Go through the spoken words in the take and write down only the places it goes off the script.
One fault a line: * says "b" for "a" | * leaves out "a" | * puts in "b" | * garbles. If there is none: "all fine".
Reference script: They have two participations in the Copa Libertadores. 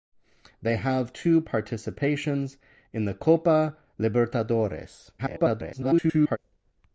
* garbles